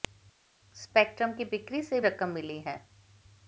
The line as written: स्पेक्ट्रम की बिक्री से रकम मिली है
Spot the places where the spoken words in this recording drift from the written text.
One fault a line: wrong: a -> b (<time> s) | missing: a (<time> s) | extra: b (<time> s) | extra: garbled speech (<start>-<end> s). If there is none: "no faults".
no faults